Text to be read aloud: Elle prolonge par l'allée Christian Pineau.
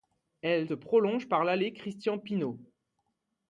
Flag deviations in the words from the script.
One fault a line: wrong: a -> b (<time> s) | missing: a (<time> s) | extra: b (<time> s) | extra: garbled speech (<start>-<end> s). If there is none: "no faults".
no faults